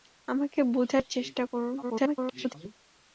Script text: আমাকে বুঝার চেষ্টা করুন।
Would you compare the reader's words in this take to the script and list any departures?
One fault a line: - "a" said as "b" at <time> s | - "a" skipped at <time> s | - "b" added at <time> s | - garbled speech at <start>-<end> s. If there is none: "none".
- garbled speech at 1.8-2.5 s